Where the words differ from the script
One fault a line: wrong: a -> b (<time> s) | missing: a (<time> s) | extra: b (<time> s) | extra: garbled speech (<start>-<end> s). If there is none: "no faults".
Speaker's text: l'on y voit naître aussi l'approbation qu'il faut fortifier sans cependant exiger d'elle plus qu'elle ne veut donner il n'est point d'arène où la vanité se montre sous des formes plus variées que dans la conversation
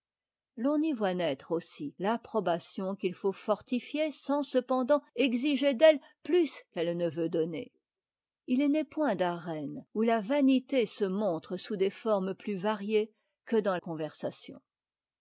missing: la (13.8 s)